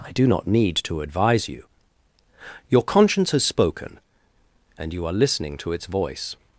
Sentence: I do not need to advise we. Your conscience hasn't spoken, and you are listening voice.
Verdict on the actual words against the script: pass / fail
fail